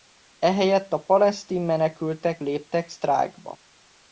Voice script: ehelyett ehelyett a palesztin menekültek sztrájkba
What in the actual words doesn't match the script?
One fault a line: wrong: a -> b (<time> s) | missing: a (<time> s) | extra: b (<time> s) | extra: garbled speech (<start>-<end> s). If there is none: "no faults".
missing: ehelyett (0.9 s)
extra: léptek (2.4 s)